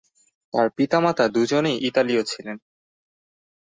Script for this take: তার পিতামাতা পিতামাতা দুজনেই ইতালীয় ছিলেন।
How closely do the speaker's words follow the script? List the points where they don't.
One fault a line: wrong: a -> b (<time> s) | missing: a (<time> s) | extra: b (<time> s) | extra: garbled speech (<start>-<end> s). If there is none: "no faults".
missing: পিতামাতা (1.2 s)